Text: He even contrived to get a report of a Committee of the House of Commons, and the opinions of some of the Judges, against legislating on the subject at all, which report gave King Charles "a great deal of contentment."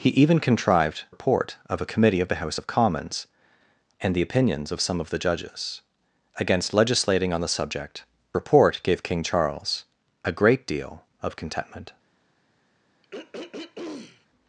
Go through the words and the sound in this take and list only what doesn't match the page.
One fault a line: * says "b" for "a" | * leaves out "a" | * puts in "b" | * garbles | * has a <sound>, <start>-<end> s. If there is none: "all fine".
* leaves out "to get a"
* leaves out "at all which"
* has a throat clearing, 13.0-14.3 s